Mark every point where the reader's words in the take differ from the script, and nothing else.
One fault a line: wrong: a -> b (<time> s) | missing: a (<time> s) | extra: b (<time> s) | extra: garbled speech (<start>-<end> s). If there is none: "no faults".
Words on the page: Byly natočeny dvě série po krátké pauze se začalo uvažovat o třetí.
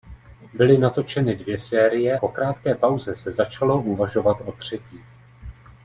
no faults